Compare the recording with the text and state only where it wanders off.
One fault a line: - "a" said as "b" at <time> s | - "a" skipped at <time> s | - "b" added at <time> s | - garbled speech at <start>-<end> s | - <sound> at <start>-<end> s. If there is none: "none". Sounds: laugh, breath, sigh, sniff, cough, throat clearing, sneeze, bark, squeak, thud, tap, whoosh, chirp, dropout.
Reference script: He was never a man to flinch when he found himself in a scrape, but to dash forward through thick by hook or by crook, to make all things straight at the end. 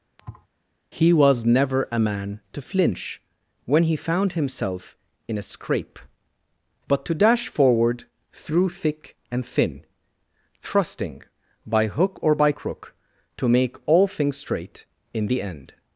- thud at 0.2-0.5 s
- "and thin trusting" added at 9.3 s
- "at" said as "in" at 15.1 s